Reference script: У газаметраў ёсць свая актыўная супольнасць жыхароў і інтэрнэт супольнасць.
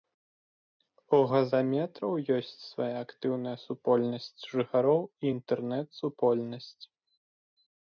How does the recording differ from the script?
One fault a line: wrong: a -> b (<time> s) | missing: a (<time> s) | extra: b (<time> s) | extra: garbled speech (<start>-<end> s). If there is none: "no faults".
no faults